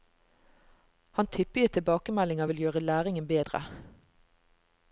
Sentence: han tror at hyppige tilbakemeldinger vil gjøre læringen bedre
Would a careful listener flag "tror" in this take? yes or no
yes